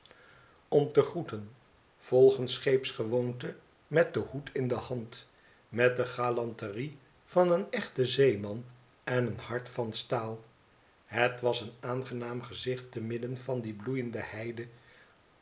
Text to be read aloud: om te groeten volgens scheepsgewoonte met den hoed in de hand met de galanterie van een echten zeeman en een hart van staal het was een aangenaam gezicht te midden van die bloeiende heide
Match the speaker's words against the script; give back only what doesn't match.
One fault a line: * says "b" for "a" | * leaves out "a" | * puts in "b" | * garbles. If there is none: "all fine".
all fine